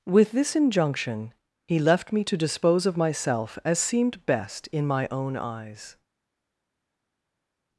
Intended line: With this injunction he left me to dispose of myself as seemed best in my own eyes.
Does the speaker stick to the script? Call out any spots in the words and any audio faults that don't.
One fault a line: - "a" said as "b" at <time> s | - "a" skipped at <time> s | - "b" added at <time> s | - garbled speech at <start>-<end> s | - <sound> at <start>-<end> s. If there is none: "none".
none